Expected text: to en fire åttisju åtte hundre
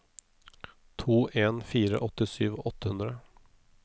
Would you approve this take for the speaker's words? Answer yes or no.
yes